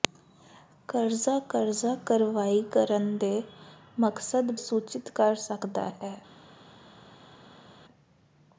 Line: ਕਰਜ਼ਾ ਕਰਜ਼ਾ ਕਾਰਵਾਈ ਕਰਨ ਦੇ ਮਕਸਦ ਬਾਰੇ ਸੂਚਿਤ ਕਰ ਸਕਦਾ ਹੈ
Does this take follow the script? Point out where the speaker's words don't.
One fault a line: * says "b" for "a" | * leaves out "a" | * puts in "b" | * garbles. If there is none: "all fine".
* leaves out "ਬਾਰੇ"